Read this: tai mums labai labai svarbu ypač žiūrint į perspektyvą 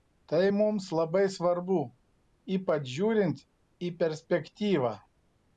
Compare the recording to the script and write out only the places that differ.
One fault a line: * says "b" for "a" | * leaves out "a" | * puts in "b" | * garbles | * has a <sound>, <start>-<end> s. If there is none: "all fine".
* leaves out "labai"